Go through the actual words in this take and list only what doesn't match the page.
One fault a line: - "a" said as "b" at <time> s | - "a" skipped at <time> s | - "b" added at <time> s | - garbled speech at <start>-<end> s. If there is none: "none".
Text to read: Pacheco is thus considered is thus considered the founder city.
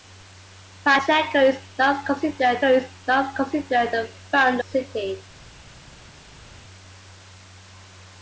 none